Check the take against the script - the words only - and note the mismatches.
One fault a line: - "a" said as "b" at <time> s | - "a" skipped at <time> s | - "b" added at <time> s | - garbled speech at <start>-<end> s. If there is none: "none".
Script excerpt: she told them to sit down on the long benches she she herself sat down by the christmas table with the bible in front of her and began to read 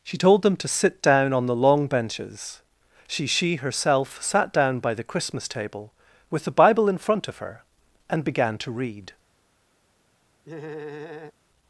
none